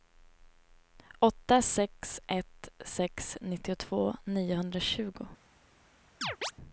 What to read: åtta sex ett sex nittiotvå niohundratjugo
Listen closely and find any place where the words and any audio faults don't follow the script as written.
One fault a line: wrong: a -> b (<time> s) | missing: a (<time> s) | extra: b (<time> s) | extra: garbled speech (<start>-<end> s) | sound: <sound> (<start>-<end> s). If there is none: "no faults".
sound: chirp (6.2-6.5 s)